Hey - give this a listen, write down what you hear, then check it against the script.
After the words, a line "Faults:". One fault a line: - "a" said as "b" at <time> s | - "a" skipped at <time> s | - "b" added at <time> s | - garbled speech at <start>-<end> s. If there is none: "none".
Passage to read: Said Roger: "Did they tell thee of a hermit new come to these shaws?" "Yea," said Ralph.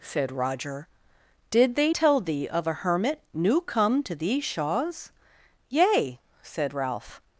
Said Roger: "Did they tell thee of a hermit new come to these shaws?" "Yea," said Ralph.
Faults:
none